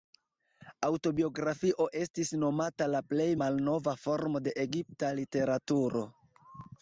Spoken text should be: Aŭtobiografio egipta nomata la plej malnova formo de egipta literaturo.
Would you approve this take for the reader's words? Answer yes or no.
no